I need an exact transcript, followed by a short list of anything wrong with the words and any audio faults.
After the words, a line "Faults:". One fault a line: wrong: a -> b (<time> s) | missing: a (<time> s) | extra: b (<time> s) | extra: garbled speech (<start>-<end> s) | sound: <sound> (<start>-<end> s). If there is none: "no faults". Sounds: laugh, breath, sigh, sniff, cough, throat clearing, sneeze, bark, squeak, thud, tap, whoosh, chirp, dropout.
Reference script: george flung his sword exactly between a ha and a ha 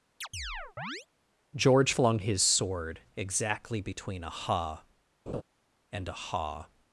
george flung his sword exactly between a ha and a ha
Faults:
sound: chirp (0.2-1.1 s)
sound: laugh (5.3-5.4 s)